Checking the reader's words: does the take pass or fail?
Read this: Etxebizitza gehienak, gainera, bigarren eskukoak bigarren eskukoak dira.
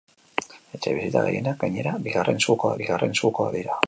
pass